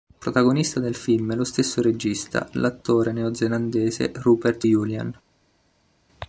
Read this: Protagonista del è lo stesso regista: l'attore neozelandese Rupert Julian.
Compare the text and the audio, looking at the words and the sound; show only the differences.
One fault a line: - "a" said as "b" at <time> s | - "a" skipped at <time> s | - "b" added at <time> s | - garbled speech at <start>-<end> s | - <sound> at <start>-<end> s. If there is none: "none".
- "film" added at 0.9 s